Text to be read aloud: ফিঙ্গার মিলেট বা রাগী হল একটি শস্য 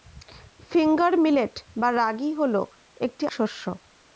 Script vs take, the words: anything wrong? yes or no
no